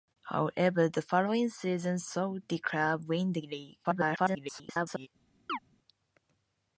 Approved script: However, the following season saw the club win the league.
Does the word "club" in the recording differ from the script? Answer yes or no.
no